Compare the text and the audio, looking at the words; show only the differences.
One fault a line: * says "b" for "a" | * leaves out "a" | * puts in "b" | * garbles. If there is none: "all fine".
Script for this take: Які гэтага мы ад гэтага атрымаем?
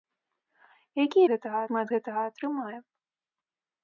all fine